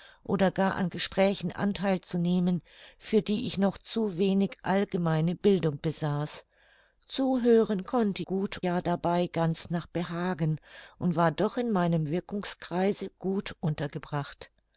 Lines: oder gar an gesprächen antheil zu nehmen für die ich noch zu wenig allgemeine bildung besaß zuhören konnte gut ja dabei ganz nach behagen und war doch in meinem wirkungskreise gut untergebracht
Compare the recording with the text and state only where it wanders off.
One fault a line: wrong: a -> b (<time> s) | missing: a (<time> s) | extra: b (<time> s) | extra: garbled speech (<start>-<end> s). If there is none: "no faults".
no faults